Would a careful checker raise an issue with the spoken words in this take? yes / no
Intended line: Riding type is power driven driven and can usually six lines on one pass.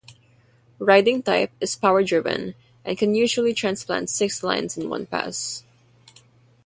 yes